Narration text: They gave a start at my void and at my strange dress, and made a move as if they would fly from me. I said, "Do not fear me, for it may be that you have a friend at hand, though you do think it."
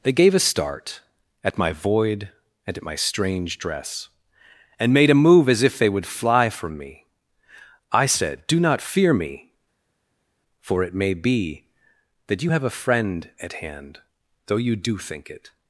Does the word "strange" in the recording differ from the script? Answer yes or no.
no